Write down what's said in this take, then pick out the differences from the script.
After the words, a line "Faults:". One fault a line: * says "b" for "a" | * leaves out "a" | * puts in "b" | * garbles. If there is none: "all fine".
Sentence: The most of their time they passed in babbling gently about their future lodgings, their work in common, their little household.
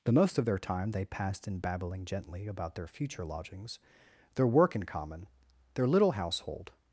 The most of their time they passed in babbling gently about their future lodgings, their work in common, their little household.
Faults:
all fine